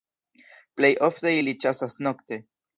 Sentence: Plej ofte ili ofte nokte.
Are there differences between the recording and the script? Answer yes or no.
yes